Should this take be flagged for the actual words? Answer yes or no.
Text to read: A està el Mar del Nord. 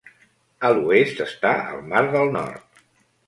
yes